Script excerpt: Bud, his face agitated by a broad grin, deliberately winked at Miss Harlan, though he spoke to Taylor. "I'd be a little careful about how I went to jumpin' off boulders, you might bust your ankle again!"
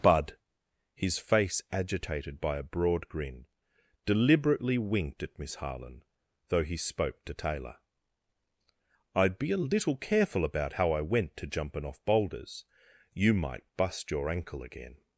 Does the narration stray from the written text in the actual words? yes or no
no